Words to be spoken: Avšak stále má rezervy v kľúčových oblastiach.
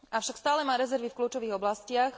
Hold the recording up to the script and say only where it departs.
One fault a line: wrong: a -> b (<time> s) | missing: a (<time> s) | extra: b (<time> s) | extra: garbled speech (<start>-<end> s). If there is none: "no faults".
no faults